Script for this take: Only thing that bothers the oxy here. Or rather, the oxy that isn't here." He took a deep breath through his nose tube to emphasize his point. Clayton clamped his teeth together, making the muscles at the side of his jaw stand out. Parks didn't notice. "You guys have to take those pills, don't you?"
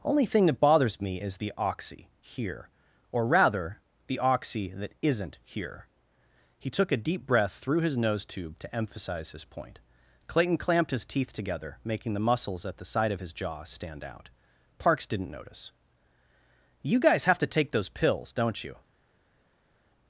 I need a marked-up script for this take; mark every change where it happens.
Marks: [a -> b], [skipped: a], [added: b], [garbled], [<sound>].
Only thing that bothers [added: me is] the oxy here. Or rather, the oxy that isn't here." He took a deep breath through his nose tube to emphasize his point. Clayton clamped his teeth together, making the muscles at the side of his jaw stand out. Parks didn't notice. "You guys have to take those pills, don't you?"